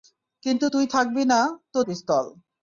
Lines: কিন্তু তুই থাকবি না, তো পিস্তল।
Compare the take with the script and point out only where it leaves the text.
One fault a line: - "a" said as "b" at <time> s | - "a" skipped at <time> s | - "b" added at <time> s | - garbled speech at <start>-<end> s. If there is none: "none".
none